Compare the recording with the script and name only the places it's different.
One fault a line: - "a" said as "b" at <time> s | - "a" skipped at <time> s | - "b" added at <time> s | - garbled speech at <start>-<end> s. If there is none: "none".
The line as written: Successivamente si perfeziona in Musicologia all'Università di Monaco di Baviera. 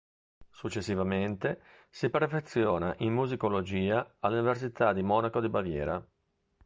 none